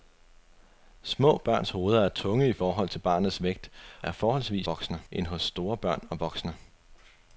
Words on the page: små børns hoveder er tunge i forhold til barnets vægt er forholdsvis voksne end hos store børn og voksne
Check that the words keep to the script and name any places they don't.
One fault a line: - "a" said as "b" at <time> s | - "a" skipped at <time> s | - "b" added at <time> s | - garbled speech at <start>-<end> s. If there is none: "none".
none